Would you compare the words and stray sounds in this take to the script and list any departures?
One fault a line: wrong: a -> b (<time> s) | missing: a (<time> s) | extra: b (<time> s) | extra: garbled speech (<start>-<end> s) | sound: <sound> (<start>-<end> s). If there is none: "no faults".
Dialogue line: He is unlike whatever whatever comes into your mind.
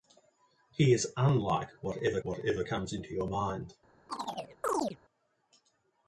sound: chirp (4.1-5.0 s)